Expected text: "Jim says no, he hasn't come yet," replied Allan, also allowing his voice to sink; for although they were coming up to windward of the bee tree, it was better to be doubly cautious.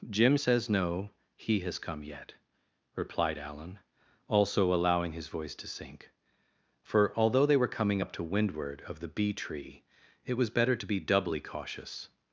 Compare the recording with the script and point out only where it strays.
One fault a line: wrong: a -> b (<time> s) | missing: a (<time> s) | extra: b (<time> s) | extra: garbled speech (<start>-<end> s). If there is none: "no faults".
wrong: hasn't -> has (1.6 s)